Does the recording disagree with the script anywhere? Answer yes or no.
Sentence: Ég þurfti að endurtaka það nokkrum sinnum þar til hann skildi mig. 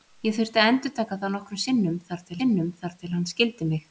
yes